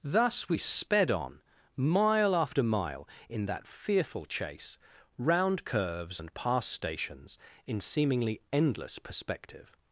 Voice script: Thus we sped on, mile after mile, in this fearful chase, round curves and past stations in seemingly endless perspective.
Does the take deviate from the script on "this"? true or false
true